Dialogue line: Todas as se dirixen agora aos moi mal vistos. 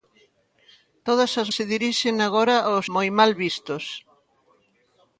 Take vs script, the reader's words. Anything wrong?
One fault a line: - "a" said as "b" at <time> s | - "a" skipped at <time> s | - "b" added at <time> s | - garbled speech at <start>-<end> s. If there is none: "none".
none